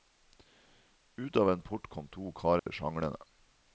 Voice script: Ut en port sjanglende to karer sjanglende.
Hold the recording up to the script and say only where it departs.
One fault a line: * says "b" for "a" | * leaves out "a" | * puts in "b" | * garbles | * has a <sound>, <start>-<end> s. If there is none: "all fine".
* puts in "av"
* says "kom" for "sjanglende"
* has a dropout, 2.6-2.7 s